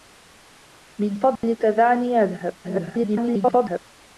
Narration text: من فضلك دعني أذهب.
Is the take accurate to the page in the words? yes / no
no